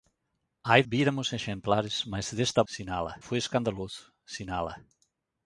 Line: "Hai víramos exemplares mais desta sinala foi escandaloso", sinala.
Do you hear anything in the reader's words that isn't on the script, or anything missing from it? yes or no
no